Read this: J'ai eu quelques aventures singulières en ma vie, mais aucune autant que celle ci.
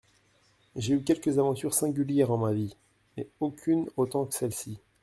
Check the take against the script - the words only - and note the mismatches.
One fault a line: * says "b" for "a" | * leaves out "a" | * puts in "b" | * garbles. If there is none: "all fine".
all fine